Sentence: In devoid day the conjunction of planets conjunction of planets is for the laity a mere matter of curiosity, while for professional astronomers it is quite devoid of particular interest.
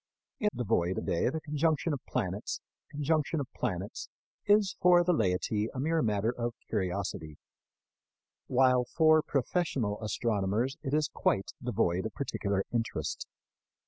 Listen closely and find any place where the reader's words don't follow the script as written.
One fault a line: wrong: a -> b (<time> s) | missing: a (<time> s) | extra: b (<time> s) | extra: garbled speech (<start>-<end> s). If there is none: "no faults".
no faults